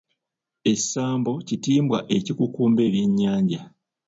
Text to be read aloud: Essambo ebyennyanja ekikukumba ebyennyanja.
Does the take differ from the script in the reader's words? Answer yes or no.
yes